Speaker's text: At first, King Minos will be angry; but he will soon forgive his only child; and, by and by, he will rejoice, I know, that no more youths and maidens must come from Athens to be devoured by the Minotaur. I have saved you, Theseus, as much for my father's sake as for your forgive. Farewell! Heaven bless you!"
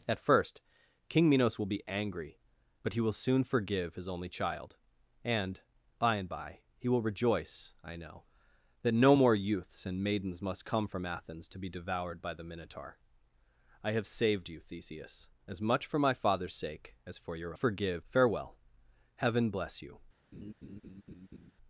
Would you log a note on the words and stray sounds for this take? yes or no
yes